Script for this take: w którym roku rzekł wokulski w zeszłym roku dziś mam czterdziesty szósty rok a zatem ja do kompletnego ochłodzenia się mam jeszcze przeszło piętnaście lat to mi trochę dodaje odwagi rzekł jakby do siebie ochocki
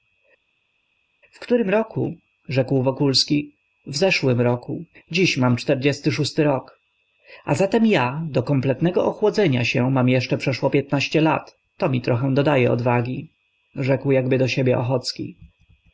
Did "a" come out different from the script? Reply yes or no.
no